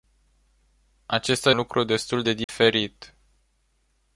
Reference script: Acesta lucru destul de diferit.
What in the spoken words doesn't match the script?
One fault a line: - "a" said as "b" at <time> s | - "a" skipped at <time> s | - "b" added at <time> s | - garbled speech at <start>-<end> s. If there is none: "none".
none